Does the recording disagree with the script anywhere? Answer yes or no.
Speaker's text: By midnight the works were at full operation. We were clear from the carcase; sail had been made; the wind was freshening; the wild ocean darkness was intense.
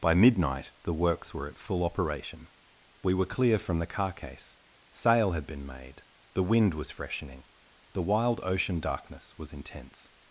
no